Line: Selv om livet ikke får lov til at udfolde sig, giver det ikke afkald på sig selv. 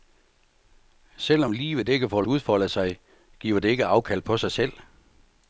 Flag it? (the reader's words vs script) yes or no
yes